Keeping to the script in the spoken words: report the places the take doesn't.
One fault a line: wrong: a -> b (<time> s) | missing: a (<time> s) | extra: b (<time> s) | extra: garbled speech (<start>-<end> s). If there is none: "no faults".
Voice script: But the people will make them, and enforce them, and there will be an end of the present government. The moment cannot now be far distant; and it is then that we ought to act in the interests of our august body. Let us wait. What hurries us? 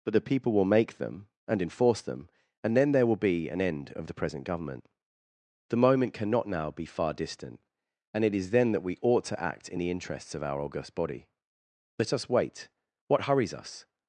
extra: then (2.8 s)